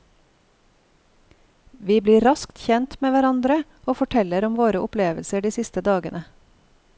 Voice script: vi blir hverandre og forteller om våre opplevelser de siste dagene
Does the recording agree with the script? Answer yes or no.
no